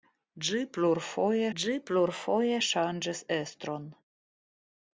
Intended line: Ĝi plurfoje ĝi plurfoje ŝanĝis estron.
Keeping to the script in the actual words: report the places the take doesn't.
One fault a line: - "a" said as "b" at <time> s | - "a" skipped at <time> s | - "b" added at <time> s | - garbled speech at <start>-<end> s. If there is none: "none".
none